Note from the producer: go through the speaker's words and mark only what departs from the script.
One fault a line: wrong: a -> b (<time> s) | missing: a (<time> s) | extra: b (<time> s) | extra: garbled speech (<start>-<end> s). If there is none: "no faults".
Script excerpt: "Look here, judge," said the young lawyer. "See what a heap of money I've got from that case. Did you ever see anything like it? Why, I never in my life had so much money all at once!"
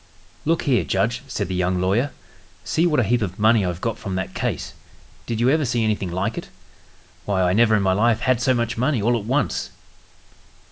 no faults